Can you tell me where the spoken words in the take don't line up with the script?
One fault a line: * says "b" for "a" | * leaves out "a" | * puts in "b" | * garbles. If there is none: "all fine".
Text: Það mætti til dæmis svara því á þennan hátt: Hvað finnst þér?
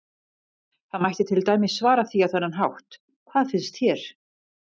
all fine